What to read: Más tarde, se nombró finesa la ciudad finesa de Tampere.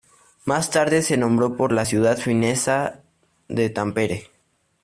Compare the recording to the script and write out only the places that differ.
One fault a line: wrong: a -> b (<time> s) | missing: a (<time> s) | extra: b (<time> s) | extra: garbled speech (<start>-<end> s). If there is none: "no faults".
wrong: finesa -> por (1.6 s)